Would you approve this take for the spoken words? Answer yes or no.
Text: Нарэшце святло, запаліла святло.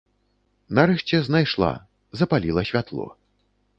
no